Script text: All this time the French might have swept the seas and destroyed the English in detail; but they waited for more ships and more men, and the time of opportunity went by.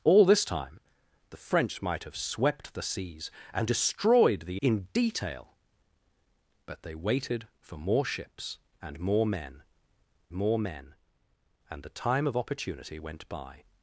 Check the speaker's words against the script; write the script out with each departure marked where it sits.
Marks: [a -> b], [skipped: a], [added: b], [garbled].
All this time the French might have swept the seas and destroyed the [skipped: English] in detail; but they waited for more ships and more men, [added: more men] and the time of opportunity went by.